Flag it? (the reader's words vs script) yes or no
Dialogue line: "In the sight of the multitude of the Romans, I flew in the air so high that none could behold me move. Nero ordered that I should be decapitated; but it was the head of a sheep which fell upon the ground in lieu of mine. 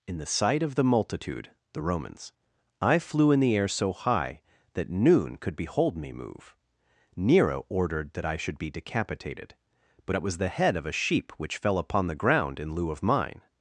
yes